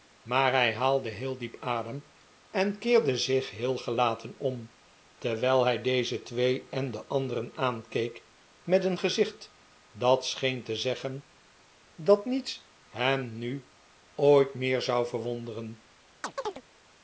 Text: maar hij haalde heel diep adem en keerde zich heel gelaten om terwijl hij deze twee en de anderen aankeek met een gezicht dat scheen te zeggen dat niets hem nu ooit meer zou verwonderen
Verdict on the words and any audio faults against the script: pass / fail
fail